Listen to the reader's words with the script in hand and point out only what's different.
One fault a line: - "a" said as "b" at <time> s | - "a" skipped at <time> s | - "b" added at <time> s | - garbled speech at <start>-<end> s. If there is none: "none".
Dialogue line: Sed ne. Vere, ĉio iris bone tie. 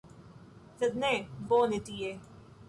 - "Vere ĉio iris" skipped at 1.1 s